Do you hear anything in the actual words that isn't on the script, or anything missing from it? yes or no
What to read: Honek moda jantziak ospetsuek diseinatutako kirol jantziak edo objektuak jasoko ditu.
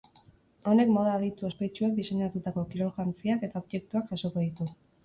yes